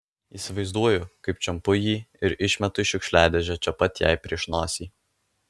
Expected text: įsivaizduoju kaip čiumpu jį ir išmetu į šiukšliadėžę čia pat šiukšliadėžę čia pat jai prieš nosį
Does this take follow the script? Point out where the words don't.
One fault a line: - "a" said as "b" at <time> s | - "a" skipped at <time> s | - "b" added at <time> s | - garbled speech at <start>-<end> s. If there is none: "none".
- "šiukšliadėžę čia pat" skipped at 4.1 s